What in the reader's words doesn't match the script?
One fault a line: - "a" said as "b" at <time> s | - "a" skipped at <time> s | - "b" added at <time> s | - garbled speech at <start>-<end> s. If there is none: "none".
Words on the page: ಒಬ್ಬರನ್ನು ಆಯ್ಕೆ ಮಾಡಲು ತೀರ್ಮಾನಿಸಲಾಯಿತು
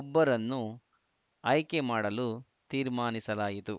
none